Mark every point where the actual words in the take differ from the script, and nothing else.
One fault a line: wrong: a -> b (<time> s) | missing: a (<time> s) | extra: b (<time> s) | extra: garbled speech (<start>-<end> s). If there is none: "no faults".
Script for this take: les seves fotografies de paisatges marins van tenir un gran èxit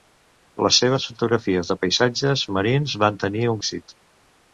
missing: gran (3.6 s)